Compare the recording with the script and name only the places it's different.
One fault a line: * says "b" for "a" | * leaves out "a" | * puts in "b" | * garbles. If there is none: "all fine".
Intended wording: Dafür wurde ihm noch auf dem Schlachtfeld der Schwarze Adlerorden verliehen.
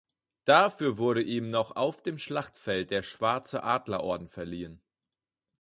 all fine